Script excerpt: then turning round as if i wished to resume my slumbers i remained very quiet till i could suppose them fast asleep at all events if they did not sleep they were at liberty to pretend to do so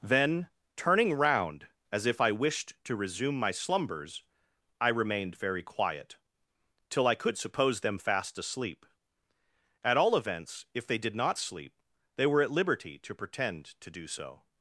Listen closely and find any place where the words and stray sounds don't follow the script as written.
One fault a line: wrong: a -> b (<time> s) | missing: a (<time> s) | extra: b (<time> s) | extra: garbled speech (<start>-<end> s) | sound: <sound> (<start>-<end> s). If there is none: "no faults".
no faults